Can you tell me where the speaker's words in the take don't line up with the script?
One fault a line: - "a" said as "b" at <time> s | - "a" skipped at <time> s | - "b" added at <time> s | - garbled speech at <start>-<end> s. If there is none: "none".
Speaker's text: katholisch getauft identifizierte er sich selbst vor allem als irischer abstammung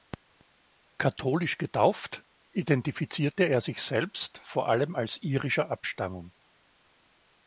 none